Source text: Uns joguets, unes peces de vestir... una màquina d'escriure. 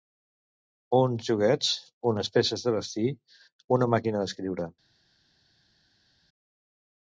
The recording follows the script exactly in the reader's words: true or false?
true